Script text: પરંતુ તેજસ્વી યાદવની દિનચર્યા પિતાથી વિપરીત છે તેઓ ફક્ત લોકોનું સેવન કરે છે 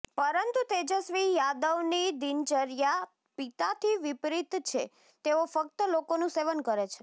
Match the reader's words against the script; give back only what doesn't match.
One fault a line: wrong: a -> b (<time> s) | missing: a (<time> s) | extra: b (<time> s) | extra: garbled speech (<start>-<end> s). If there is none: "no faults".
no faults